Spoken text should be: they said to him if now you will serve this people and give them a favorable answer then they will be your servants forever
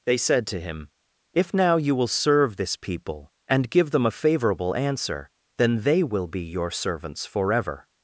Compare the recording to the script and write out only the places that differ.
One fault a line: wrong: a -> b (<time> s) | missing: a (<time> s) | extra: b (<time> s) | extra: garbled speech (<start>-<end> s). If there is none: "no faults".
no faults